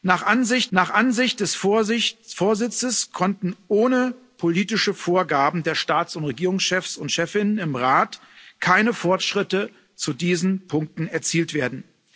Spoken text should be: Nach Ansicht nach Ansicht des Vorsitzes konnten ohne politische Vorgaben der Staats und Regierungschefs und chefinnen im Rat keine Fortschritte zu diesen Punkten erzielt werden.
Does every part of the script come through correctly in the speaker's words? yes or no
yes